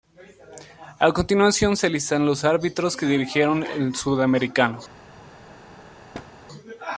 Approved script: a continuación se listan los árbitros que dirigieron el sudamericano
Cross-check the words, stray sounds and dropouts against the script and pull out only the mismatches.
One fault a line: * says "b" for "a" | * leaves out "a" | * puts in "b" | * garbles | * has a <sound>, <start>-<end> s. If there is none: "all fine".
* has a thud, 6.1-6.3 s